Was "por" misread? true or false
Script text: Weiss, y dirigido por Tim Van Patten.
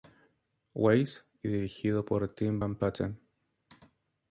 false